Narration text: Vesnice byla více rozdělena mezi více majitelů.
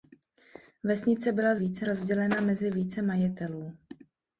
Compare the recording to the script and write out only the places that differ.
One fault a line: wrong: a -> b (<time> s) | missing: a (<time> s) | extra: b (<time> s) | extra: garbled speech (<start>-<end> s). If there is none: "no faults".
no faults